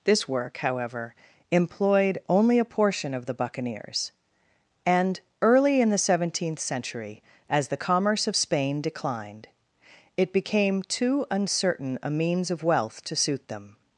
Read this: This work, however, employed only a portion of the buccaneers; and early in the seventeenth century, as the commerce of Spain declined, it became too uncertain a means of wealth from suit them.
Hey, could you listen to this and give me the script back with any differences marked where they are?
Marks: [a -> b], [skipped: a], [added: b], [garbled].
This work, however, employed only a portion of the buccaneers; and early in the seventeenth century, as the commerce of Spain declined, it became too uncertain a means of wealth [from -> to] suit them.